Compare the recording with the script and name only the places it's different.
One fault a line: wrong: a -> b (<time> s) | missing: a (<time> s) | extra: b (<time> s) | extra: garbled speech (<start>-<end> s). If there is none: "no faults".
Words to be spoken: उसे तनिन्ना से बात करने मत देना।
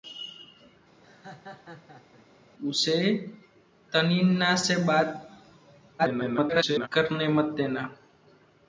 extra: garbled speech (6.0-6.9 s)